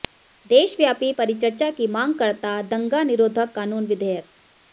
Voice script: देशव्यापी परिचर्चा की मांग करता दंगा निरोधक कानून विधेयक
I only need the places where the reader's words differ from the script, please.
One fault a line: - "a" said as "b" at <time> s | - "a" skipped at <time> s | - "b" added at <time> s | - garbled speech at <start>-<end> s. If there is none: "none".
none